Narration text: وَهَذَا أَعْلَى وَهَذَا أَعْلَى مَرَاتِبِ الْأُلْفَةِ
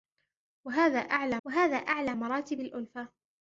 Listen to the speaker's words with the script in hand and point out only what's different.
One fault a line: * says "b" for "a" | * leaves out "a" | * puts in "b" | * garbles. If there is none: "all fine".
all fine